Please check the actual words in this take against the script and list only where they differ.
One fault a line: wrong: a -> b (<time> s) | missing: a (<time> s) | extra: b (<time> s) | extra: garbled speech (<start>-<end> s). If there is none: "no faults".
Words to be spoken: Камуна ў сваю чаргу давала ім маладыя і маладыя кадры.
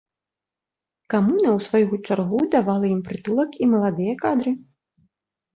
wrong: маладыя -> прытулак (3.1 s)